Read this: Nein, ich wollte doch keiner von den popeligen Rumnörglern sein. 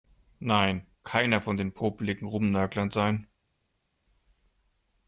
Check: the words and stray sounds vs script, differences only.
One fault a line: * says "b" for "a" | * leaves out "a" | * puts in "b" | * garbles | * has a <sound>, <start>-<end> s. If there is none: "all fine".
* leaves out "ich wollte doch"